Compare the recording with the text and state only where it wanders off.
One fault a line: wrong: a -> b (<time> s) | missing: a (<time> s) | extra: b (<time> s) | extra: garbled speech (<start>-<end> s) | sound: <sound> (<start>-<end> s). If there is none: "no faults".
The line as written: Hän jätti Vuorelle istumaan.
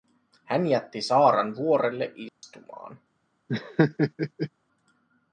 extra: Saaran (1.0 s)
sound: dropout (2.3-2.4 s)
sound: laugh (3.5-4.5 s)